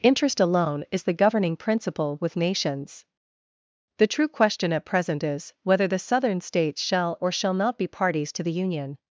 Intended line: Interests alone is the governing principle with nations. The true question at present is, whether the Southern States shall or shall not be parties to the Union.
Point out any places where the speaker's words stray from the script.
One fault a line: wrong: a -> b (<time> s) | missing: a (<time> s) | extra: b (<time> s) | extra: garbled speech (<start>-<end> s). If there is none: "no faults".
wrong: Interests -> Interest (0.0 s)